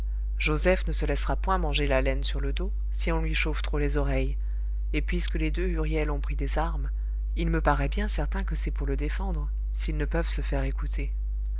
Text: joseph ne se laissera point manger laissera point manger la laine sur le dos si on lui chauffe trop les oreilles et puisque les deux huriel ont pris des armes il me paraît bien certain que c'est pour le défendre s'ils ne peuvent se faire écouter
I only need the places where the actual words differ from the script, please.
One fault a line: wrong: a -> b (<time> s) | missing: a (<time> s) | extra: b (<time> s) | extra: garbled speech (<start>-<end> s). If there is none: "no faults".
missing: laissera point manger (1.9 s)